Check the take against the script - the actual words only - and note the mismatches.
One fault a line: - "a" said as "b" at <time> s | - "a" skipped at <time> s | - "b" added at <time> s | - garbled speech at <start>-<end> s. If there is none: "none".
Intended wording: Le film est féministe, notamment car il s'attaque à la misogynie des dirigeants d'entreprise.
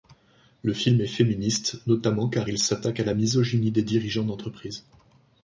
none